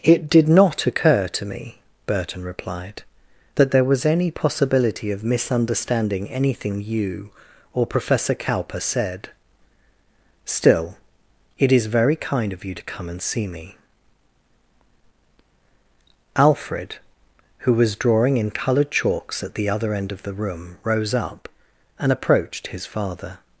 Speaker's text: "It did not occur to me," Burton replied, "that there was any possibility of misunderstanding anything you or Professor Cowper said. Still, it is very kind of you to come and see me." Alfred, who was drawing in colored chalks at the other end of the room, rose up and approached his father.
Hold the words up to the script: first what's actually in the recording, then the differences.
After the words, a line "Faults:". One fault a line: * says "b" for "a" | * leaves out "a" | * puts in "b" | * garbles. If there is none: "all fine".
"It did not occur to me," Burton replied, "that there was any possibility of misunderstanding anything you or Professor Cowper said. Still, it is very kind of you to come and see me." Alfred, who was drawing in colored chalks at the other end of the room, rose up and approached his father.
Faults:
all fine